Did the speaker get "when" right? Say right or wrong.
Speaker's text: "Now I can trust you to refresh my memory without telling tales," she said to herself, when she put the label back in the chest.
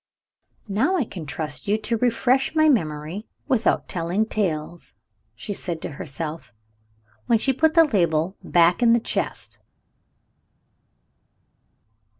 right